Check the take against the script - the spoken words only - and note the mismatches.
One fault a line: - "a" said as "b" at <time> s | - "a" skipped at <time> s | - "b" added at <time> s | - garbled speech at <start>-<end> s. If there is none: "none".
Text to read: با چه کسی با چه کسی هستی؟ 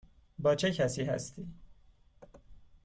- "با چه کسی" skipped at 1.0 s